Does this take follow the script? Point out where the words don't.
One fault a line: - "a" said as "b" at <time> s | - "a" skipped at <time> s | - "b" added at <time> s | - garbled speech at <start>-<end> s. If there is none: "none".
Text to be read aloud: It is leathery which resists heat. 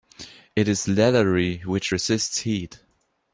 none